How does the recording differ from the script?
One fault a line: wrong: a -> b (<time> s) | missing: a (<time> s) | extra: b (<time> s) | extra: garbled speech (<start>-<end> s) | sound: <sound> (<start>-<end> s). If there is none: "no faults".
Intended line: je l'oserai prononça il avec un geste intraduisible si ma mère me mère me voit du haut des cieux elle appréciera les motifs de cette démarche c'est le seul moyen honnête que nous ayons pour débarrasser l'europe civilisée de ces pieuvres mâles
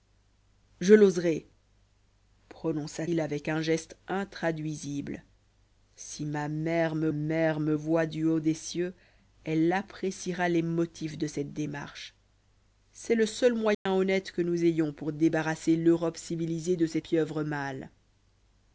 sound: dropout (13.7-13.9 s)